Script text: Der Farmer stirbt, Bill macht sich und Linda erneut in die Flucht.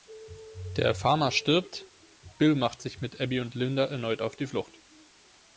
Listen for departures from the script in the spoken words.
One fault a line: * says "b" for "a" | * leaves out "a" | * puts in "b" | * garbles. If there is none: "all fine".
* puts in "mit Abby"
* says "auf" for "in"